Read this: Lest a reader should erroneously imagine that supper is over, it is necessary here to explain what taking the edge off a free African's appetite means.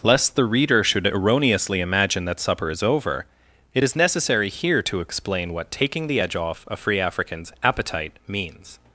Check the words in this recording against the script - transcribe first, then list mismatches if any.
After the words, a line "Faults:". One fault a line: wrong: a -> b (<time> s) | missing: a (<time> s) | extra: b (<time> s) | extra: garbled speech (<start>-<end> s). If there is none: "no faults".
Lest the reader should erroneously imagine that supper is over, it is necessary here to explain what taking the edge off a free African's appetite means.
Faults:
wrong: a -> the (0.3 s)